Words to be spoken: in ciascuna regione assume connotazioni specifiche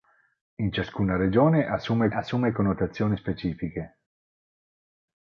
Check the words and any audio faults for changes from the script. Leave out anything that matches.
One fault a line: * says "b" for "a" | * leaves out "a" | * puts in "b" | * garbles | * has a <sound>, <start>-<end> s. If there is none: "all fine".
* puts in "assume"